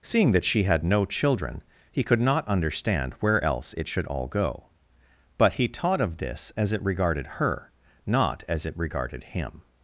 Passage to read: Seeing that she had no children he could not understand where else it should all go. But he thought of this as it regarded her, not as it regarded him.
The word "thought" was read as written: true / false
false